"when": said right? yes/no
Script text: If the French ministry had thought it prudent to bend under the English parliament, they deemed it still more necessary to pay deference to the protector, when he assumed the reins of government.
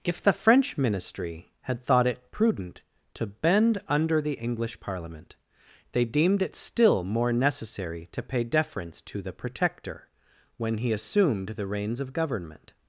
yes